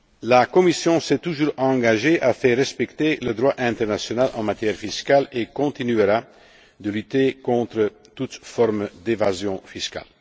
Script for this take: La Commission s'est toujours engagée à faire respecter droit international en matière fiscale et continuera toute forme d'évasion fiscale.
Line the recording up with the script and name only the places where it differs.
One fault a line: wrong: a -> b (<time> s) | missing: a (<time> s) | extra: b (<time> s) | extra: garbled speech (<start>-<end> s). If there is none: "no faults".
extra: le (3.2 s)
extra: de lutter contre (6.8 s)